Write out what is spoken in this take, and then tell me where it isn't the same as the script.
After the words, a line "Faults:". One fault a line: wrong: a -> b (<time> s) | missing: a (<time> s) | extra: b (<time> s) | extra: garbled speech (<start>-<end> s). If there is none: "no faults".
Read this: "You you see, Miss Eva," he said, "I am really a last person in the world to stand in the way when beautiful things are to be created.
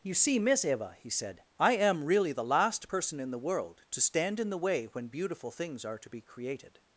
"You see, Miss Eva," he said, "I am really the last person in the world to stand in the way when beautiful things are to be created.
Faults:
missing: you (0.1 s)
wrong: a -> the (2.3 s)